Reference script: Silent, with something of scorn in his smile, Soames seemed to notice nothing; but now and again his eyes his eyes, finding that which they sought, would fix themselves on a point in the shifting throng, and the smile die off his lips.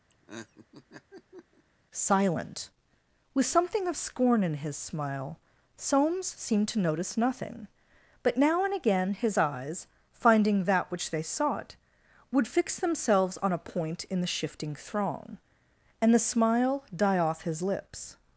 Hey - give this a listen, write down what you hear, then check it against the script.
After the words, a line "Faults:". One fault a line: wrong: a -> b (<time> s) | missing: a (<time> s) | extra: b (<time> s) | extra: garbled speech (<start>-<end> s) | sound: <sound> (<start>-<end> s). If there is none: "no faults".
Silent, with something of scorn in his smile, Soames seemed to notice nothing; but now and again his eyes, finding that which they sought, would fix themselves on a point in the shifting throng, and the smile die off his lips.
Faults:
sound: laugh (0.1-1.6 s)
missing: his eyes (9.9 s)